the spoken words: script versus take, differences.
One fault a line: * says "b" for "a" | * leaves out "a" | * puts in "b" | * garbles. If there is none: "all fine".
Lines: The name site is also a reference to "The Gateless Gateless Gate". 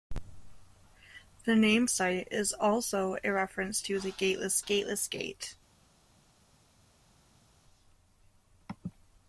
all fine